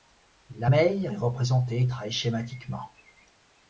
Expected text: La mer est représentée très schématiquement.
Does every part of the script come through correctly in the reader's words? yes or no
yes